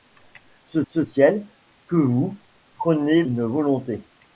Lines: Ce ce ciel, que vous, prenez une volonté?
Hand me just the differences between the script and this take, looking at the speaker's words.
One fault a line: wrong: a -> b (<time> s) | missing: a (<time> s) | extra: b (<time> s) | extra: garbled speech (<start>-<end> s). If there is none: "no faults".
no faults